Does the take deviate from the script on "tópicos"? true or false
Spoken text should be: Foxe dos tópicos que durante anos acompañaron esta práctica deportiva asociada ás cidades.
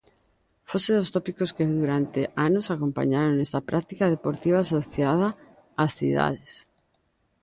false